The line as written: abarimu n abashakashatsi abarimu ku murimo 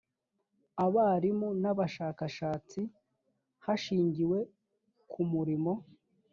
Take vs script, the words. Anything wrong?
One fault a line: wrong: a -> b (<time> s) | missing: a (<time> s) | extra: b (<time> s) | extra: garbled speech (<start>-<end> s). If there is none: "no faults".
wrong: abarimu -> hashingiwe (3.6 s)